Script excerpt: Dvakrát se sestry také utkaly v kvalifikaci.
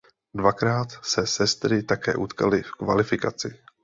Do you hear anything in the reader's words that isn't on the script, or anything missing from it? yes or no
no